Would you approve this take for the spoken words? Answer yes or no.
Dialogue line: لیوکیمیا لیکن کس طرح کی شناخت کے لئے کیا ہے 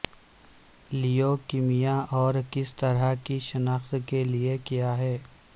no